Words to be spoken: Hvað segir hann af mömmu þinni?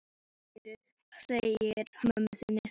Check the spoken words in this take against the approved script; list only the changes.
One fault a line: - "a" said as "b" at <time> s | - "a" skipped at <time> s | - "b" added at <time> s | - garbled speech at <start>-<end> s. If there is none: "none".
- "hann af" skipped at 1.9 s